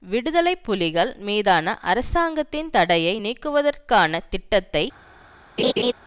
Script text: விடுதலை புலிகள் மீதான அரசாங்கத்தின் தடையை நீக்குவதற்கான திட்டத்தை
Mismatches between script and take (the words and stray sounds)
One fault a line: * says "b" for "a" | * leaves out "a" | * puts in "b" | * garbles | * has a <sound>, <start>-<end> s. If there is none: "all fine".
* has a laugh, 5.6-5.9 s